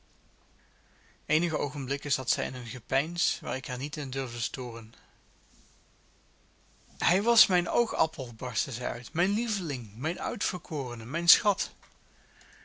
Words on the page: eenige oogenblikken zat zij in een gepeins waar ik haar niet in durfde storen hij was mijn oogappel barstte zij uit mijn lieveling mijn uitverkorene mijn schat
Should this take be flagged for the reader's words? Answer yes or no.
no